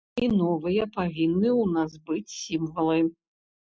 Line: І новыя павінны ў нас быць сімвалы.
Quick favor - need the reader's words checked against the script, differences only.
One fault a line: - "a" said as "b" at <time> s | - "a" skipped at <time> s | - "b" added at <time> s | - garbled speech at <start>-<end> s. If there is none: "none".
none